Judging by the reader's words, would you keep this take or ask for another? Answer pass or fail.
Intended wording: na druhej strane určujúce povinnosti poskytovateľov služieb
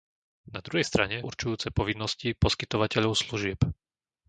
pass